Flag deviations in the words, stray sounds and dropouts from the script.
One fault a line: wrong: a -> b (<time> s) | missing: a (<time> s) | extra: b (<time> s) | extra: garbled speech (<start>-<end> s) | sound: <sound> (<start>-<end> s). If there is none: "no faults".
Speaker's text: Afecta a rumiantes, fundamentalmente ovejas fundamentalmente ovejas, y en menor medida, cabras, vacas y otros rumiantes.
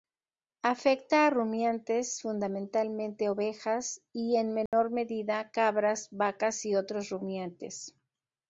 missing: fundamentalmente ovejas (4.0 s)
sound: dropout (4.7-4.7 s)